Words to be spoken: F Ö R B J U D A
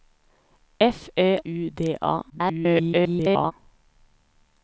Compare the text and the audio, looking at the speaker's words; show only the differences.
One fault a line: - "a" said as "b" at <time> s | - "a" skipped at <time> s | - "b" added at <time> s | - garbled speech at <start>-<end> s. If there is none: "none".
- "R B J" skipped at 1.4 s
- garbled speech at 2.3-3.5 s